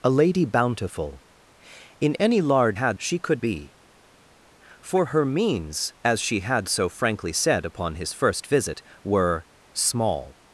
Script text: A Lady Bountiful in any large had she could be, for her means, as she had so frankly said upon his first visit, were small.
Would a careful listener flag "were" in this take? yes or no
no